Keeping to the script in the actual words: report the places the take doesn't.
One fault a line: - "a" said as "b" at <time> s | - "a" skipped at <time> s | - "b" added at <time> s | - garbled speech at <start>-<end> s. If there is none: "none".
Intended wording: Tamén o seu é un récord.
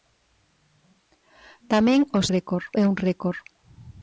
- "seu" said as "récord" at 2.3 s